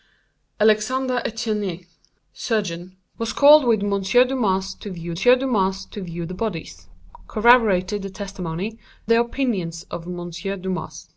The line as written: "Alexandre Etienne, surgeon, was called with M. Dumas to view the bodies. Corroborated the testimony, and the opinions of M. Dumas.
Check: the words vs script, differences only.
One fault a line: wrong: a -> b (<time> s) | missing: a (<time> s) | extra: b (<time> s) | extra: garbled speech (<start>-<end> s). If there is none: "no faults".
extra: dumas to view (5.1 s)
missing: and (8.8 s)